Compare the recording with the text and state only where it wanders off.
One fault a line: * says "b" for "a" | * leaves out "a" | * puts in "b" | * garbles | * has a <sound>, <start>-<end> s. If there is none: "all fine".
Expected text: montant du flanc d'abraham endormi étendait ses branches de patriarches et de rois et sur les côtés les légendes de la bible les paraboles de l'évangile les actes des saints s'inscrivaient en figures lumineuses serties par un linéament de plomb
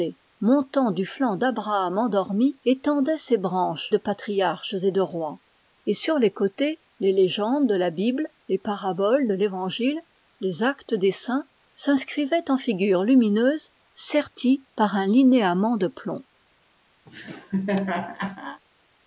* has a laugh, 17.1-18.6 s